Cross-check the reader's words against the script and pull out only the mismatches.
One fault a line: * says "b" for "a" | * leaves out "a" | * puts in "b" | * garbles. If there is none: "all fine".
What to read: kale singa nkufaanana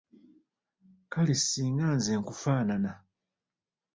* puts in "nze"